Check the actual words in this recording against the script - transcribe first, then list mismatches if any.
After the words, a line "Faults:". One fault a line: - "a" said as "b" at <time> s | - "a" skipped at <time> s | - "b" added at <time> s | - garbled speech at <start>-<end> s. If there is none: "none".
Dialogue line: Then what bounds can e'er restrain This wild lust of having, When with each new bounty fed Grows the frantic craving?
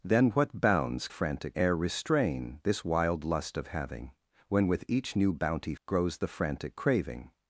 Then what bounds frantic e'er restrain This wild lust of having, When with each new bounty Grows the frantic craving?
Faults:
- "can" said as "frantic" at 1.1 s
- "fed" skipped at 5.7 s